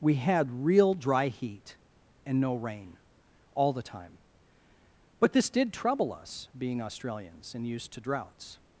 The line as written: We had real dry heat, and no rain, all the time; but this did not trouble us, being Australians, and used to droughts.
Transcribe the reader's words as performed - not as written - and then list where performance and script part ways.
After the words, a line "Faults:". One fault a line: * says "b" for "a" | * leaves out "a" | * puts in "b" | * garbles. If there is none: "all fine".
We had real dry heat, and no rain, all the time; but this did trouble us, being Australians, and used to droughts.
Faults:
* leaves out "not"